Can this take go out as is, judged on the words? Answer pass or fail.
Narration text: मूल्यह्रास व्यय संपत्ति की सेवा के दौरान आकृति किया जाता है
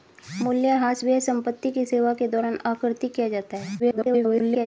fail